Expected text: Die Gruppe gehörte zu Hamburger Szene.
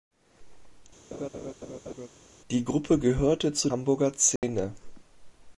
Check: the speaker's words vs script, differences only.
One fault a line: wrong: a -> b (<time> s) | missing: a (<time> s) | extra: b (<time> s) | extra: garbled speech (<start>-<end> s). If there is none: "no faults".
no faults